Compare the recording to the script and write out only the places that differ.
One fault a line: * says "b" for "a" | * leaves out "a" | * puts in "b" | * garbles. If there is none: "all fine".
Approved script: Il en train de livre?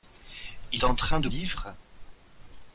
all fine